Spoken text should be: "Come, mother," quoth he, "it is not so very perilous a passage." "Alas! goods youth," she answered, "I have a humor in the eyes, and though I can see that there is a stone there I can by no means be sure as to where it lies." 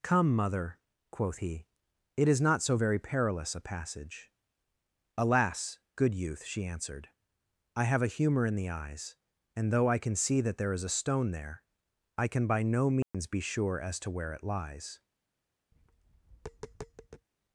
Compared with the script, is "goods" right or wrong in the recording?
wrong